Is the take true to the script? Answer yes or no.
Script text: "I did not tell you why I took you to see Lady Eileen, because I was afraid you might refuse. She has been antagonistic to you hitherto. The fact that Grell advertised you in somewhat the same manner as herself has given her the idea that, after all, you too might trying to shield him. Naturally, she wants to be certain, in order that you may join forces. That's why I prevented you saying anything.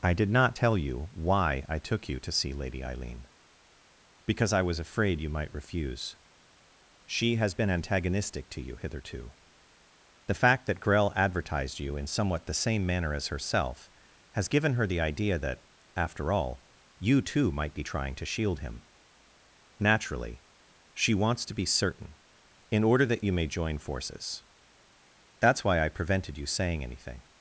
no